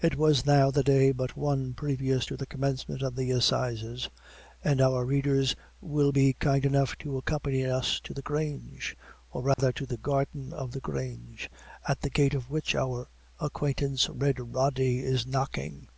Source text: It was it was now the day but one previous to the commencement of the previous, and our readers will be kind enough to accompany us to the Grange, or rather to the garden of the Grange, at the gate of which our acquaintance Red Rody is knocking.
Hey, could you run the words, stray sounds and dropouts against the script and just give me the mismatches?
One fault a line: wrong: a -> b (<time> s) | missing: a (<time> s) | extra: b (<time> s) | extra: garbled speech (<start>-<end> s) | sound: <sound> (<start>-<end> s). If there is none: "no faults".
missing: it was (0.5 s)
wrong: previous -> assizes (3.3 s)
sound: dropout (9.5-9.6 s)